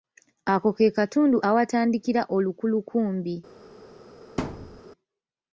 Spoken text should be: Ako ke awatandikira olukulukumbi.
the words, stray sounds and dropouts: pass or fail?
fail